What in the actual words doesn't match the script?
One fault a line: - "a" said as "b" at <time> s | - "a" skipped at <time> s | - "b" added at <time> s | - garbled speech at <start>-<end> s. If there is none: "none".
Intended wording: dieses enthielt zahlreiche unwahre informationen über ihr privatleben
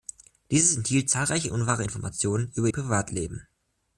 - "ihr" skipped at 2.7 s